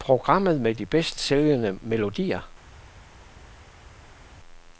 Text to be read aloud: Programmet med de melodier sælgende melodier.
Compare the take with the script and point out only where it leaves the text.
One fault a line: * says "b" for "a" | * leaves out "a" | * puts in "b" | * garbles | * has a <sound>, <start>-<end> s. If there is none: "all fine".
* says "bedst" for "melodier"